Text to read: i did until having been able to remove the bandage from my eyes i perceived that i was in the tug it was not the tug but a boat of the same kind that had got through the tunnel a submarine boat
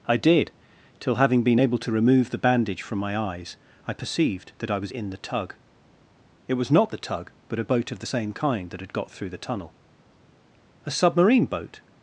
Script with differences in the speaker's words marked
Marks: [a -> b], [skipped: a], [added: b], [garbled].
i did [until -> till] having been able to remove the bandage from my eyes i perceived that i was in the tug it was not the tug but a boat of the same kind that had got through the tunnel a submarine boat